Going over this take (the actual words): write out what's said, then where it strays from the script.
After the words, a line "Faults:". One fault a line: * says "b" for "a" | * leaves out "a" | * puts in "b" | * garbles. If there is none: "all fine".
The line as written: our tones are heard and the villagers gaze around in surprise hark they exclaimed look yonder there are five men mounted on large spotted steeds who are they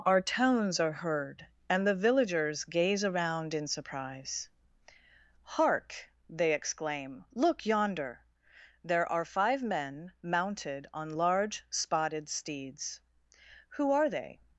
our tones are heard and the villagers gaze around in surprise hark they exclaim look yonder there are five men mounted on large spotted steeds who are they
Faults:
* says "exclaim" for "exclaimed"